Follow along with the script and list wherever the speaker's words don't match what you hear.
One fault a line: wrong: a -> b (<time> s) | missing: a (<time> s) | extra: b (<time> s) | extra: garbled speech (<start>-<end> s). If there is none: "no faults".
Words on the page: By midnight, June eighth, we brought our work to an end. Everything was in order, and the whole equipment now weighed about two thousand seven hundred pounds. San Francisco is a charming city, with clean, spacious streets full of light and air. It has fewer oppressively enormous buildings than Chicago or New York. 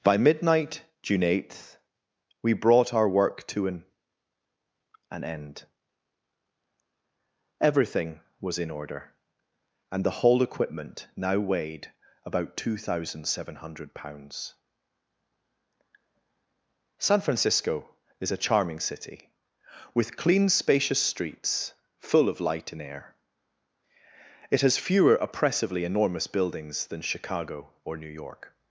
extra: an (5.1 s)